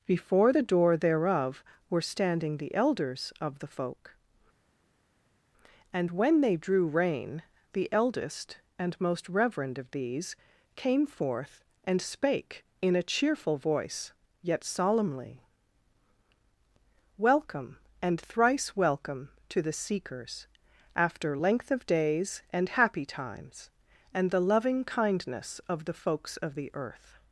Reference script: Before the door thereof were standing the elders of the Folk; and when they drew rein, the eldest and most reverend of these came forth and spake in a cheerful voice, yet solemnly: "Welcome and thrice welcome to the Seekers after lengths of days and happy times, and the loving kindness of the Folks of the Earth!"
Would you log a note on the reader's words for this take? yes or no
yes